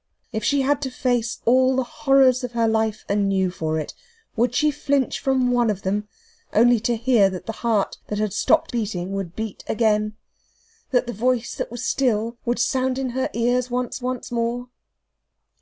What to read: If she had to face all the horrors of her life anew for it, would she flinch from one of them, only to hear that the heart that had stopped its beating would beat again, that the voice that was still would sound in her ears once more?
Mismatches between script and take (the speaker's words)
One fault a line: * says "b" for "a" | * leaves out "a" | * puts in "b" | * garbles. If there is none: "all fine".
* leaves out "its"
* puts in "once"